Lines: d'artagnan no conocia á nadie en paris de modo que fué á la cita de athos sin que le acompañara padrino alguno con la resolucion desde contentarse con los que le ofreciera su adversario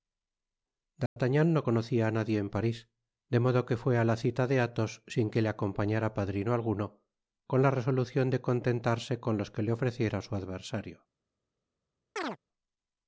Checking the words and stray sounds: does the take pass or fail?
fail